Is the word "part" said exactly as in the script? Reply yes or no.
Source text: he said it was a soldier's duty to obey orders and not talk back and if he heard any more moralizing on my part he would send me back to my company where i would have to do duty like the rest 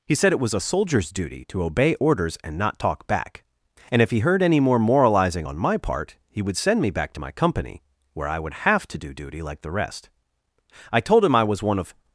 yes